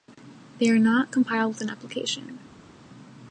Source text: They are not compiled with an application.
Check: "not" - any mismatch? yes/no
no